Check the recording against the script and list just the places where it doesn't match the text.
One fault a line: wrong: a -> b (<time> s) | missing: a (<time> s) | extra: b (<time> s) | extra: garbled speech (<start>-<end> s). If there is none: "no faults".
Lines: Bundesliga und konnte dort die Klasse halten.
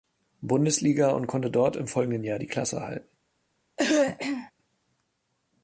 extra: im folgenden Jahr (1.8 s)